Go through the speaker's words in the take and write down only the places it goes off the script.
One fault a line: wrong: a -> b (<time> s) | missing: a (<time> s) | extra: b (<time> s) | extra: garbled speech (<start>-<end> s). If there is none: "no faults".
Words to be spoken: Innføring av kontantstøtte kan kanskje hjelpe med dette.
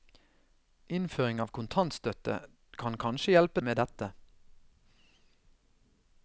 no faults